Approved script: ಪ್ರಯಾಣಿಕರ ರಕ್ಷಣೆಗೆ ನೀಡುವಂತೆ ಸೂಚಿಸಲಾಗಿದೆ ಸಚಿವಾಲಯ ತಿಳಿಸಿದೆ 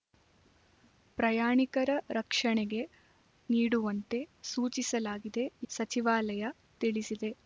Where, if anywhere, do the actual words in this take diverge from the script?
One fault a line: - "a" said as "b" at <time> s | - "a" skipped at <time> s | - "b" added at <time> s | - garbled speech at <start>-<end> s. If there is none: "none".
none